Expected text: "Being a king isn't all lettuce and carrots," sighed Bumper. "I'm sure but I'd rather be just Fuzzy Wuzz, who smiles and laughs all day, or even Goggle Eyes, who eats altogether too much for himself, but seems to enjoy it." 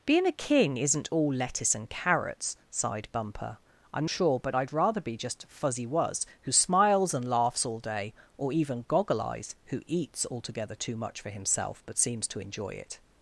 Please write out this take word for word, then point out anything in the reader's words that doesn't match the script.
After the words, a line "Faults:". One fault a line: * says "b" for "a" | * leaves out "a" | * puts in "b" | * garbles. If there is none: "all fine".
"Being a king isn't all lettuce and carrots," sighed Bumper. "I'm sure but I'd rather be just Fuzzy Wuzz, who smiles and laughs all day, or even Goggle Eyes, who eats altogether too much for himself, but seems to enjoy it."
Faults:
all fine